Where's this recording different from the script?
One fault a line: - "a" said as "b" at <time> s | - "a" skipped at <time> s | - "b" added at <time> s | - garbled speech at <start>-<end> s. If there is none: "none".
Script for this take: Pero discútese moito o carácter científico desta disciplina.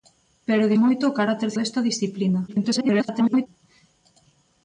- "discútese" skipped at 0.7 s
- "científico" skipped at 1.5 s
- garbled speech at 2.5-3.5 s